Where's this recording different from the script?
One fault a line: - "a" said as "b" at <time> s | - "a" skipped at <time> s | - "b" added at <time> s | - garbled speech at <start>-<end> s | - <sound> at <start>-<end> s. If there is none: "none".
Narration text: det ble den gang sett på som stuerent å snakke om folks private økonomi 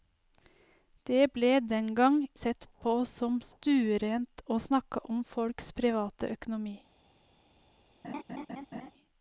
- laugh at 8.0-8.9 s